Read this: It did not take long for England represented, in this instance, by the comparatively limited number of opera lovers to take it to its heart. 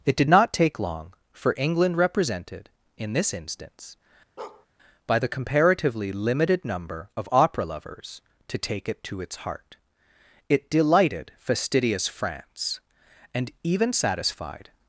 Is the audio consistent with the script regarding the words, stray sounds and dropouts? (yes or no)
no